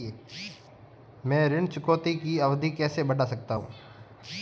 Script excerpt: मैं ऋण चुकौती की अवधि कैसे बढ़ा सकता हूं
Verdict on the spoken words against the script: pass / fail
pass